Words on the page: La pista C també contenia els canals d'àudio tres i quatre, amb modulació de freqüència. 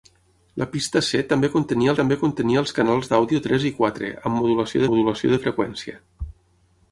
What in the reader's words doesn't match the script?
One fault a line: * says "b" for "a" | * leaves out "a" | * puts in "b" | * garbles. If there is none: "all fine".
* puts in "també contenia"
* puts in "modulació"